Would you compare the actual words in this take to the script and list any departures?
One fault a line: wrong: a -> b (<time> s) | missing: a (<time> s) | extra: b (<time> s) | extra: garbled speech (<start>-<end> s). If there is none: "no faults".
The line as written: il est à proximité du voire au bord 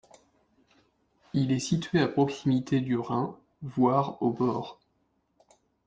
extra: situé (1.6 s)
extra: rhin (3.0 s)